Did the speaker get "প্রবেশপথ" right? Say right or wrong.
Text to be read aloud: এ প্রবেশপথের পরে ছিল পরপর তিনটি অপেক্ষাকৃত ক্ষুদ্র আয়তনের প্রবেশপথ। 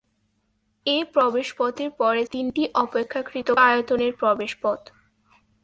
right